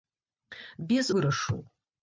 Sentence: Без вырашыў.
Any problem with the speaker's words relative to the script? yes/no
no